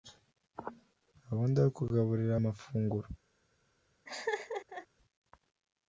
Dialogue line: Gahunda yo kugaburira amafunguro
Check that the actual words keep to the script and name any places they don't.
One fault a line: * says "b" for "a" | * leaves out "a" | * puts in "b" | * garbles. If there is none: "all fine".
all fine